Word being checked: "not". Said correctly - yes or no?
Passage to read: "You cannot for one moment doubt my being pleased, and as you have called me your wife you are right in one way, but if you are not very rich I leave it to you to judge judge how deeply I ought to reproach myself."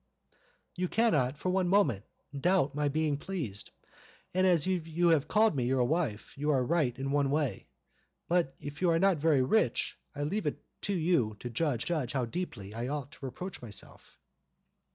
yes